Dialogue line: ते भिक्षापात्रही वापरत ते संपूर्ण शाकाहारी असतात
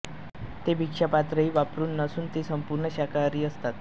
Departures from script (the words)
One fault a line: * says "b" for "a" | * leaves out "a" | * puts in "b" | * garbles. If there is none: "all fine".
* puts in "नसून"